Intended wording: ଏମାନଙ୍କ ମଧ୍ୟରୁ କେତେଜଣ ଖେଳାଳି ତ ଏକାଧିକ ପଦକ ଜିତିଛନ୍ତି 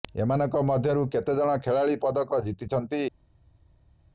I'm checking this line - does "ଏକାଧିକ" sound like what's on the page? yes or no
no